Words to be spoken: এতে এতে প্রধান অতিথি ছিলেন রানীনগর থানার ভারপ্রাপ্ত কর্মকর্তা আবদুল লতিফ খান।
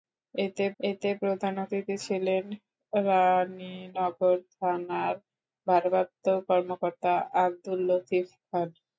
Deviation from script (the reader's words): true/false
false